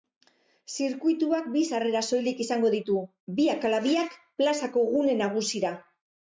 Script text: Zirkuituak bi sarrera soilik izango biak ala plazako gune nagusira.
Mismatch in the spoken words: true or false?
true